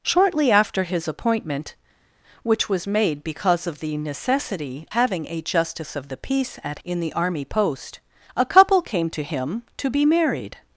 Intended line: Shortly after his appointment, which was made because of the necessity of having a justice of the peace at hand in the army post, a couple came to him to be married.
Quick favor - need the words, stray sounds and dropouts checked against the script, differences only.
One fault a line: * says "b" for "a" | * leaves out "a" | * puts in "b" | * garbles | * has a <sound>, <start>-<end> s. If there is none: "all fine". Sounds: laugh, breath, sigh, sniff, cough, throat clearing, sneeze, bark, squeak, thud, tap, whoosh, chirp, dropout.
* leaves out "of"
* leaves out "hand"